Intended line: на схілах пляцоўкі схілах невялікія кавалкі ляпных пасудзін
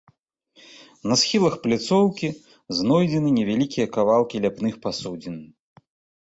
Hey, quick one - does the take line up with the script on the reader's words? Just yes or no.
no